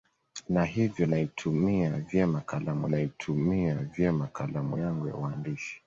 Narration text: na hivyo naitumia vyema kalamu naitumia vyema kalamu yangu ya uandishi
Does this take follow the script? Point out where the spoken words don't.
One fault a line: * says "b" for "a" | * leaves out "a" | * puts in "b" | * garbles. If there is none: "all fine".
all fine